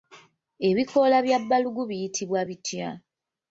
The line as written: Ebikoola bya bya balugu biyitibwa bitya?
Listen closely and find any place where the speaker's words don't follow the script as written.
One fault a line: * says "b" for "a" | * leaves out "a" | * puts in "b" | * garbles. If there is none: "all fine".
* leaves out "bya"